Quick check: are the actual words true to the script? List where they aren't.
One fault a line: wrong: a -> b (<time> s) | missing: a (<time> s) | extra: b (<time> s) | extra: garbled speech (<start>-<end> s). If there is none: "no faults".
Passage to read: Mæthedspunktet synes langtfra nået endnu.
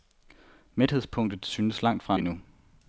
missing: nået (2.2 s)